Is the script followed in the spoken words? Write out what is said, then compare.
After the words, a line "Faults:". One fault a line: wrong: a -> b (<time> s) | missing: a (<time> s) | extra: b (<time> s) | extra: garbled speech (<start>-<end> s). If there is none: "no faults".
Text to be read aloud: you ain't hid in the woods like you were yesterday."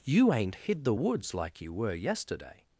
you ain't hid the woods like you were yesterday."
Faults:
missing: in (0.8 s)